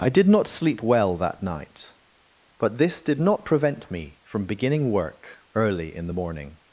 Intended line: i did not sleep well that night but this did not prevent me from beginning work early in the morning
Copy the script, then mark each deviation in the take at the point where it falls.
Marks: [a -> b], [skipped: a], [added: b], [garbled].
i did not sleep well that night but this did not prevent me from beginning work early in the morning